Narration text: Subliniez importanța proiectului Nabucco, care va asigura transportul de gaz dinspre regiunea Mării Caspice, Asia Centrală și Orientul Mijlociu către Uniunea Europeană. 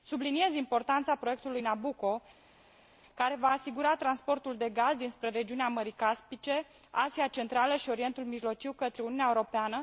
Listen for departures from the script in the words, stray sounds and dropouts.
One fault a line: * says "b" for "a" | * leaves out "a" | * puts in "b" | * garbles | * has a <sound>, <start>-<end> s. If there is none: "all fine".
all fine